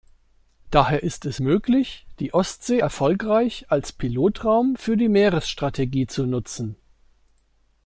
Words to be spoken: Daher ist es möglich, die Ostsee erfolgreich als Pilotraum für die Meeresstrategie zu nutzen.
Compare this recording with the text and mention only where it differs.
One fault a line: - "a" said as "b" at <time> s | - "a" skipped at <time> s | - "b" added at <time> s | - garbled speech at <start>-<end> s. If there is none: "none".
none